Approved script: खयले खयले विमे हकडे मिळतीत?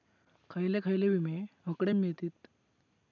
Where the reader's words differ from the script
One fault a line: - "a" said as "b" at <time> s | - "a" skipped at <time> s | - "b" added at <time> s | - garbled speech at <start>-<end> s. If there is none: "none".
none